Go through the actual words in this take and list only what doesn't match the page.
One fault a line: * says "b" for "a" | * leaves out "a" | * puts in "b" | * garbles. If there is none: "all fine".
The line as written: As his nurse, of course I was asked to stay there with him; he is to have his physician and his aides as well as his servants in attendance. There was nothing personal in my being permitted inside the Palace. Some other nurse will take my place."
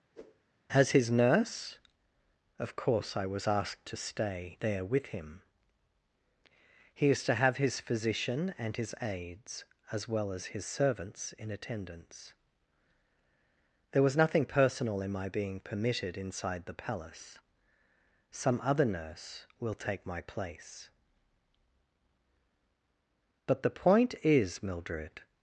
* puts in "But the point is Mildred"